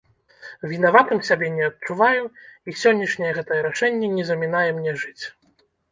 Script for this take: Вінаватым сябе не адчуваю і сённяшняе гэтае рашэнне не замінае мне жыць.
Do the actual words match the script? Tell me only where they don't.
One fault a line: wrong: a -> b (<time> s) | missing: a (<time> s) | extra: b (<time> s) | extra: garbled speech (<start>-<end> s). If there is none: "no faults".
no faults